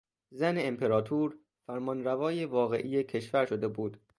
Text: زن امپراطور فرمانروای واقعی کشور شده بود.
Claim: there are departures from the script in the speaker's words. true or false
false